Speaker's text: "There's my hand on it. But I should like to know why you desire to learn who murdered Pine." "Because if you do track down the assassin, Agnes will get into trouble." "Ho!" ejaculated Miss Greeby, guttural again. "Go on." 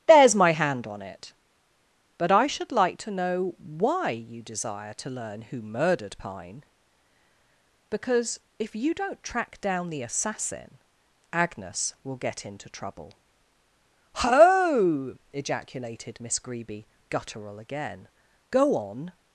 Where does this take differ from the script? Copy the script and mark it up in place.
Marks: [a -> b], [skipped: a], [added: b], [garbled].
"There's my hand on it. But I should like to know why you desire to learn who murdered Pine." "Because if you [do -> don't] track down the assassin, Agnes will get into trouble." "Ho!" ejaculated Miss Greeby, guttural again. "Go on."